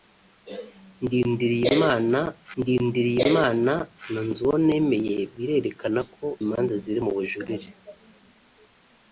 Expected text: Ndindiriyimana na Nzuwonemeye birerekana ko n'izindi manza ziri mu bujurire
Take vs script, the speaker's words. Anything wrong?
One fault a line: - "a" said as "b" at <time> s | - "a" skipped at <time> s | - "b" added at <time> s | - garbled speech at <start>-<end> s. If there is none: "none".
- "ndindiriyimana" added at 2.6 s
- "n'izindi" skipped at 6.2 s